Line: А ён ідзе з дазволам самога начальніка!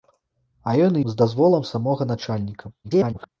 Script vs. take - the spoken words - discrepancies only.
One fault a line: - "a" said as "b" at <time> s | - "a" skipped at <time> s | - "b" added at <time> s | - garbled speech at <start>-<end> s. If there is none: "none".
- "ідзе" skipped at 1.0 s
- garbled speech at 2.8-3.3 s